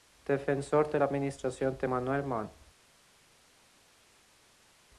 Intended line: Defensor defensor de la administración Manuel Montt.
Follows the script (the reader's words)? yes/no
no